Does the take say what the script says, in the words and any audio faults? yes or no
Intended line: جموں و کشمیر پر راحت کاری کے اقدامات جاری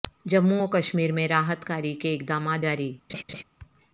no